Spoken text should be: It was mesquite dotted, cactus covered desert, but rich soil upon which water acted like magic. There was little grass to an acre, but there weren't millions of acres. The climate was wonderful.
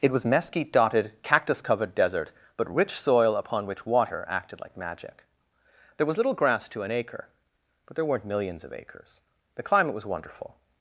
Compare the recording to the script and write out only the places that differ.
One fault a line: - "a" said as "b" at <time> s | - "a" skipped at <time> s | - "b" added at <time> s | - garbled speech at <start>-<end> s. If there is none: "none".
none